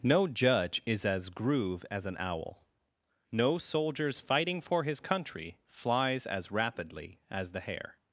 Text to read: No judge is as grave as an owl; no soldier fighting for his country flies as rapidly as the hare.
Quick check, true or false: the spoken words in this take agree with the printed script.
false